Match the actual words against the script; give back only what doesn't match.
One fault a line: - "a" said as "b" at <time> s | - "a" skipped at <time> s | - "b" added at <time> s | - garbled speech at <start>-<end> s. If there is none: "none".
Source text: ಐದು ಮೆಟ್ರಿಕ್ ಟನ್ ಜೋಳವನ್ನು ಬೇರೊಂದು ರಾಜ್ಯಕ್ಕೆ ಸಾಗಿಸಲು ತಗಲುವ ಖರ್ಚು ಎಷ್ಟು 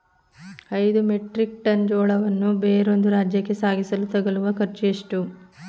none